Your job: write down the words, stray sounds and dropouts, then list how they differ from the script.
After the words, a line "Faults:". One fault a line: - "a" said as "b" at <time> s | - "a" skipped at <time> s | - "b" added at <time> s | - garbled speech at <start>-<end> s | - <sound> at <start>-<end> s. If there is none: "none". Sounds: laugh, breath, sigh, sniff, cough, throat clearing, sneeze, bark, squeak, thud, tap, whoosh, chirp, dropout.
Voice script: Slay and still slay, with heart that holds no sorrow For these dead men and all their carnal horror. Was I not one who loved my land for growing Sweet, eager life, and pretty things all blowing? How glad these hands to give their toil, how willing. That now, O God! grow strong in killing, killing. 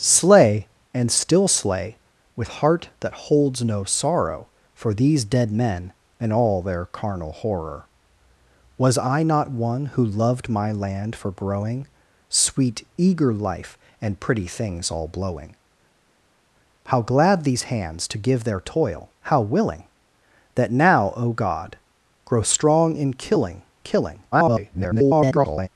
Slay and still slay, with heart that holds no sorrow For these dead men and all their carnal horror. Was I not one who loved my land for growing Sweet, eager life, and pretty things all blowing? How glad these hands to give their toil, how willing. That now, O God! grow strong in killing, killing. [garbled]
Faults:
- garbled speech at 24.3-25.7 s